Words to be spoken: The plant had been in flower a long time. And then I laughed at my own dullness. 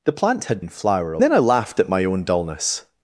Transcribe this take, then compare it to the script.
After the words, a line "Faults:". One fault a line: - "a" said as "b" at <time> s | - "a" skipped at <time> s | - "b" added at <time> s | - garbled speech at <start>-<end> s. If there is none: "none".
The plant had in flower a then I laughed at my own dullness.
Faults:
- "been" skipped at 0.6 s
- "long time And" skipped at 1.2 s